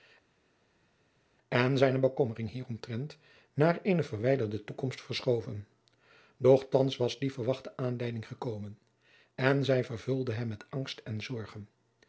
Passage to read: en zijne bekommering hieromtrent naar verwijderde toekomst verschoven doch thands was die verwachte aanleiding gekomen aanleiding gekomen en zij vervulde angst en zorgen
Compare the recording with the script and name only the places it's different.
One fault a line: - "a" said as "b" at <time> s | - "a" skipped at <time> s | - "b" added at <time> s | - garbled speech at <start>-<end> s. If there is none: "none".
- "eene" added at 3.8 s
- "aanleiding gekomen" skipped at 8.8 s
- "hem met" added at 10.3 s